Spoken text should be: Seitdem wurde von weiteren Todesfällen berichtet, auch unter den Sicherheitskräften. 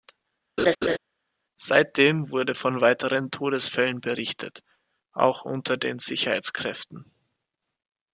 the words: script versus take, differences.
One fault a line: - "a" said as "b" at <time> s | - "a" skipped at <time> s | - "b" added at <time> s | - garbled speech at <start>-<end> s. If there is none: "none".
none